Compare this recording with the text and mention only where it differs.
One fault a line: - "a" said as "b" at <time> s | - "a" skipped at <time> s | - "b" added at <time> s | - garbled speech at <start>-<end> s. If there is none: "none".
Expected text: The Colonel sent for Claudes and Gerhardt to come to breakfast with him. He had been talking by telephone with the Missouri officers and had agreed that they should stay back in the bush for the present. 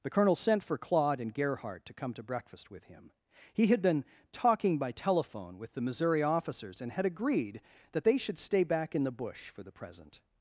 - "Claudes" said as "Claude" at 0.8 s